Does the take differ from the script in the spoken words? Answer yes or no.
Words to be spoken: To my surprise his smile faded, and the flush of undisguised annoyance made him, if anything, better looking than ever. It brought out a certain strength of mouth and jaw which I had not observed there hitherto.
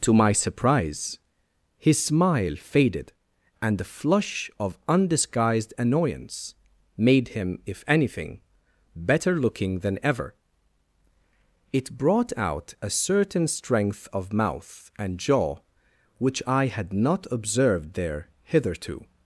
no